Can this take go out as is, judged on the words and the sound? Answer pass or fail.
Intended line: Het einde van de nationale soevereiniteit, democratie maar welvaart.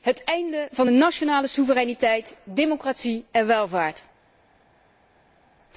fail